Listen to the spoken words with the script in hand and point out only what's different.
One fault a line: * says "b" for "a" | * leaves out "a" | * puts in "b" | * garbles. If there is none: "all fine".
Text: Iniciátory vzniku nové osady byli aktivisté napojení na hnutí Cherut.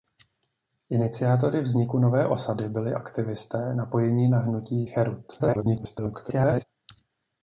* garbles